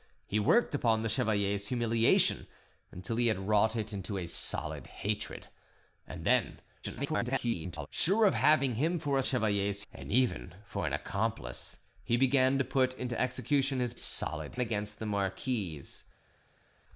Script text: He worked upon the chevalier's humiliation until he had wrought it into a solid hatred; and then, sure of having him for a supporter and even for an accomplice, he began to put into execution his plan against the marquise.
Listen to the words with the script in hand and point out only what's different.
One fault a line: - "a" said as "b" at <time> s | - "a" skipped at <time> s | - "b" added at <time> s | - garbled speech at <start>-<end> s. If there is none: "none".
- garbled speech at 6.8-7.9 s
- "supporter" said as "chevalier's" at 9.2 s
- "plan" said as "solid" at 13.9 s